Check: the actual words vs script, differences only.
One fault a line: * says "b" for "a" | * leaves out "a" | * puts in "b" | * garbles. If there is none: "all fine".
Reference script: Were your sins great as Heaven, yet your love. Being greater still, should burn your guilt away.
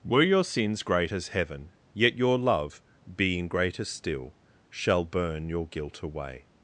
* says "shall" for "should"